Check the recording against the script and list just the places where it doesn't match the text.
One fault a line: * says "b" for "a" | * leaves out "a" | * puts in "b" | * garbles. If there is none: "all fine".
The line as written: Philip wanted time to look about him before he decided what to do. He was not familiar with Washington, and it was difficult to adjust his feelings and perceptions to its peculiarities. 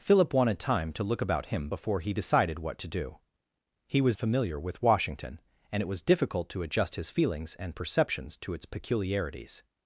* leaves out "not"